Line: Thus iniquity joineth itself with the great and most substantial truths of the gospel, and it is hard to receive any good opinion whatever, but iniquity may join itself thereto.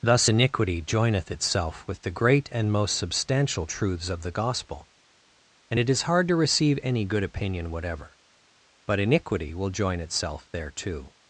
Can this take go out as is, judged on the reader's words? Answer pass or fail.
fail